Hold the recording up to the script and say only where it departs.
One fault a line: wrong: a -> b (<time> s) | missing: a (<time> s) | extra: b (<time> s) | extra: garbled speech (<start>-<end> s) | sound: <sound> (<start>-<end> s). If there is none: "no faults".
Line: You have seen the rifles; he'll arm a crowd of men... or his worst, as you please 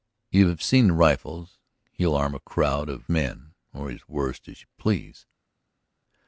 no faults